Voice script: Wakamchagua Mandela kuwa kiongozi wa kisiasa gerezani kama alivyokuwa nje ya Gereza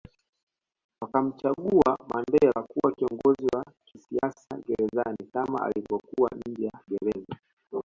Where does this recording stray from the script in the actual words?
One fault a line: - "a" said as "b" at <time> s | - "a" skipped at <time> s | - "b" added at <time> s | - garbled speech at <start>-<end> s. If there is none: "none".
none